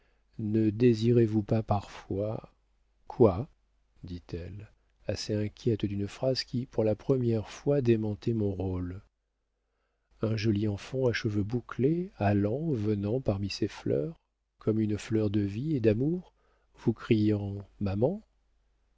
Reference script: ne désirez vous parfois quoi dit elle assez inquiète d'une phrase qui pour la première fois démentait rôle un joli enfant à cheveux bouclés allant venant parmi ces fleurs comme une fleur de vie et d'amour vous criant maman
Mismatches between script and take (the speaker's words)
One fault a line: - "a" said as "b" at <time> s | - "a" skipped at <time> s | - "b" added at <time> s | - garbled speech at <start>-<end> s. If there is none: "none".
- "pas" added at 1.4 s
- "mon" added at 8.3 s